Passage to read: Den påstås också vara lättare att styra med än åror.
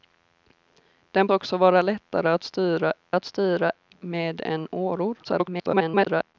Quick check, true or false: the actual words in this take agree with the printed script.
false